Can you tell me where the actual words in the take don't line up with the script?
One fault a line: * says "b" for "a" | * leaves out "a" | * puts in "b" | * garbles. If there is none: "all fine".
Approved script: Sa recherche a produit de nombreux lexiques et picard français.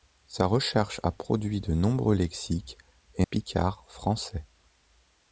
all fine